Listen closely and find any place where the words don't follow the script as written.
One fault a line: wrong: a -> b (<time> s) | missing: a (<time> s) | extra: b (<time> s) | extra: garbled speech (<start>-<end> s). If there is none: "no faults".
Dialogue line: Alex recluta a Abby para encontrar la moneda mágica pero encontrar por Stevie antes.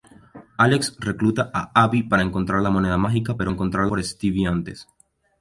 no faults